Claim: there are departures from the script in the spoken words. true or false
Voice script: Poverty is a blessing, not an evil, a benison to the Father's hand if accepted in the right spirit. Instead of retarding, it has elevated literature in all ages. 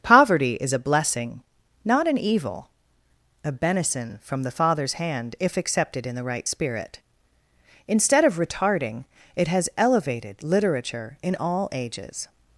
true